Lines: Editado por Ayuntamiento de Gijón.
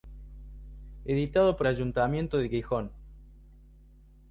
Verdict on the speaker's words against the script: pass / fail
pass